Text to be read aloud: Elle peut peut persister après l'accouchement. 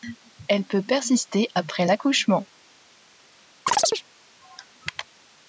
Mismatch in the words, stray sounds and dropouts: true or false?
true